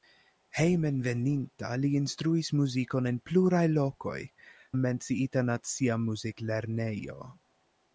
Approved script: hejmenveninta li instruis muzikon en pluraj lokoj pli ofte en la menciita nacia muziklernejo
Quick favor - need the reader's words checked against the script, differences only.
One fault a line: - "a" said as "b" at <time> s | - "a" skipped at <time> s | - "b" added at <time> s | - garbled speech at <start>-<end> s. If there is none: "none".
- "pli ofte en" skipped at 4.2 s